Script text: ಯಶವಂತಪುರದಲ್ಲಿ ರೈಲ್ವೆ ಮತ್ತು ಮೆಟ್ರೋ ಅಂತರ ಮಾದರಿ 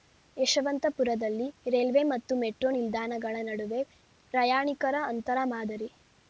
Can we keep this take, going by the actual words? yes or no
no